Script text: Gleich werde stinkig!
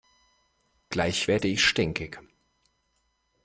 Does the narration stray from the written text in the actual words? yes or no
yes